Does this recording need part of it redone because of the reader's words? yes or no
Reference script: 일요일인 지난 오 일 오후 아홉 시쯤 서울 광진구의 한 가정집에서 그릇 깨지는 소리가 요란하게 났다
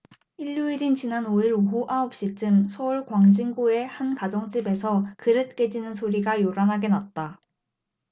no